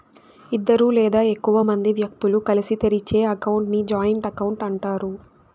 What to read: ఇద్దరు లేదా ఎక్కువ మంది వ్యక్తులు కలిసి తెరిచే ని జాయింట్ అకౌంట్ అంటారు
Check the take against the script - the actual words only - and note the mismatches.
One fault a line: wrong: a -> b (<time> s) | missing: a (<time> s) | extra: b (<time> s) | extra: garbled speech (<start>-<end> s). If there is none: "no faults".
extra: అకౌంట్ (3.3 s)